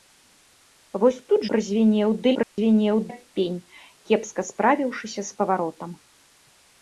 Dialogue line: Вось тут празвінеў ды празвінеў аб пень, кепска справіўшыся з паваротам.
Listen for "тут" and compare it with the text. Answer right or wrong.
right